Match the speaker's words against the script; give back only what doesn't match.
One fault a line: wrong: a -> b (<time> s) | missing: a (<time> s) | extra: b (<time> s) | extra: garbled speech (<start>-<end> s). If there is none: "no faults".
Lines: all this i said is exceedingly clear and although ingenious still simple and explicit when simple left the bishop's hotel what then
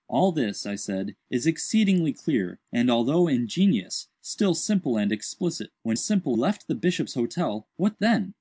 no faults